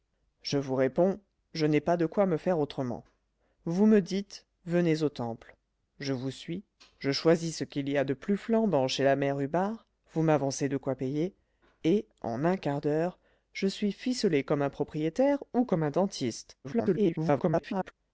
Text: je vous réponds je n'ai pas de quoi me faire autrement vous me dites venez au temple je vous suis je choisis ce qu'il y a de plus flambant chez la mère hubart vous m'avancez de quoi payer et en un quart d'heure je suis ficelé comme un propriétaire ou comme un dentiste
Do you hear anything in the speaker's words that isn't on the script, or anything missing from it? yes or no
yes